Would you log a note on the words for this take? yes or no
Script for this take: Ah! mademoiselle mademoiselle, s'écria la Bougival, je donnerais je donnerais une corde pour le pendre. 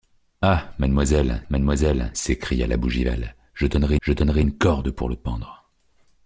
no